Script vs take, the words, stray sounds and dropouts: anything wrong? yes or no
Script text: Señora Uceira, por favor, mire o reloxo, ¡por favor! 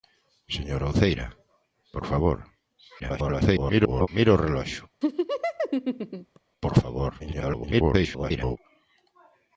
yes